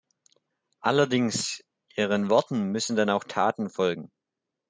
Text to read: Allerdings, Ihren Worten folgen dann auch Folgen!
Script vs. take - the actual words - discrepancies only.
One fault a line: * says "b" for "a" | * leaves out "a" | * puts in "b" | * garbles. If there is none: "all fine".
* says "müssen" for "folgen"
* puts in "Taten"